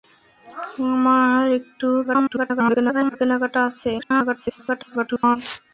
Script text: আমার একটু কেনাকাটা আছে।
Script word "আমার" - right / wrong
right